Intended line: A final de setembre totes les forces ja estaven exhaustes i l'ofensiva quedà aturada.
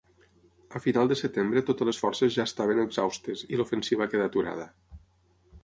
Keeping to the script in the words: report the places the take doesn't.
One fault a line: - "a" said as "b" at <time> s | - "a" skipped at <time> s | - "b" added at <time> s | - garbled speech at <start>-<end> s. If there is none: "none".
none